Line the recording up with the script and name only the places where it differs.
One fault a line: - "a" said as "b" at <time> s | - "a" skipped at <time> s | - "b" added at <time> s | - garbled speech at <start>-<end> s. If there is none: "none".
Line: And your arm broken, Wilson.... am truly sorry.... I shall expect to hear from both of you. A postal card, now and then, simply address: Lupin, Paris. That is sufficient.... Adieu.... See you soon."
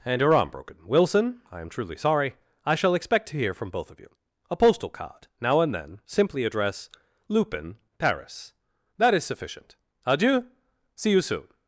- "I" added at 1.5 s